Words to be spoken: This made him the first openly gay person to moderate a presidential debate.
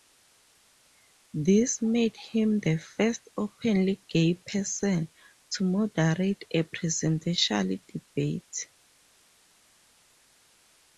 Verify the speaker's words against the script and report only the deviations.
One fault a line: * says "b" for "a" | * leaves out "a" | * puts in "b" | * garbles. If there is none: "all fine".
all fine